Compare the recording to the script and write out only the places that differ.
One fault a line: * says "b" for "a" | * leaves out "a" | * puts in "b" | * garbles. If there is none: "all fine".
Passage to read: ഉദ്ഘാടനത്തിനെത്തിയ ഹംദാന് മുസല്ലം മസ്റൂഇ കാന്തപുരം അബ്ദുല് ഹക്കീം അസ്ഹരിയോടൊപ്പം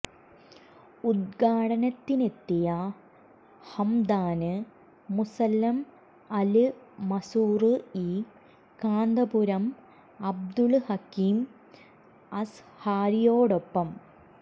* puts in "അല്"